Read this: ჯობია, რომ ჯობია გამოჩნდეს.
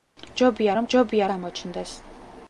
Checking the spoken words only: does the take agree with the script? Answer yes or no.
yes